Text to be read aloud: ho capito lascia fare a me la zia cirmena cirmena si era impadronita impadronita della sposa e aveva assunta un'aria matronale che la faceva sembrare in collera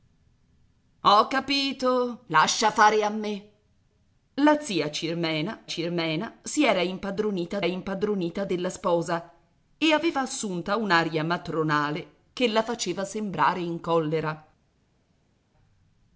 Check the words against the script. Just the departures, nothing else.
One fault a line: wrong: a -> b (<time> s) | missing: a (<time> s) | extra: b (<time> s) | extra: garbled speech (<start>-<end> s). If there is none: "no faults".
no faults